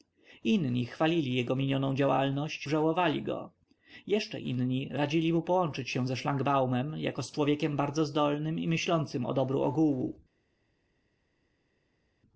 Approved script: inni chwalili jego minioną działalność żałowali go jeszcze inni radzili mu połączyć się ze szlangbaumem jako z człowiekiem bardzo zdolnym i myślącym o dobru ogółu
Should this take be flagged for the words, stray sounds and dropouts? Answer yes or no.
no